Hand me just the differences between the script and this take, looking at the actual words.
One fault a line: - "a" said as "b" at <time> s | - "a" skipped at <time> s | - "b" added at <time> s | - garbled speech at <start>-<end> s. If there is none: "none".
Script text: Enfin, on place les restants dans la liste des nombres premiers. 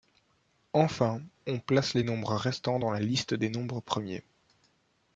- "nombres" added at 2.0 s